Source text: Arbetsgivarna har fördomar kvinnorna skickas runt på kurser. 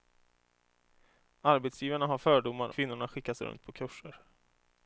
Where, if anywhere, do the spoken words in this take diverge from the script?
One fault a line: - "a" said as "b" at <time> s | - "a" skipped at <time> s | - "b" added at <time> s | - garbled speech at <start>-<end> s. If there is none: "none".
none